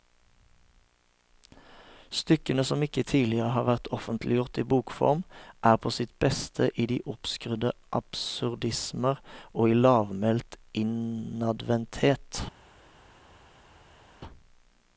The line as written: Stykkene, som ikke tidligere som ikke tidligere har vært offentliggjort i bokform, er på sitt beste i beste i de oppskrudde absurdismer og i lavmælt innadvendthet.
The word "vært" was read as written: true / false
true